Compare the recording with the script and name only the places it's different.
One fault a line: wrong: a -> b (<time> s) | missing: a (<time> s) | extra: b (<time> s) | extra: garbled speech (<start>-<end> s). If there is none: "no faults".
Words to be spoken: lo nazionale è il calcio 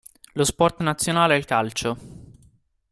extra: sport (0.4 s)